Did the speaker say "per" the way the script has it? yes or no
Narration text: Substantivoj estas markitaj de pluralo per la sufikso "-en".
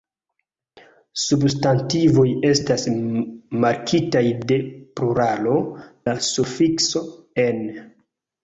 no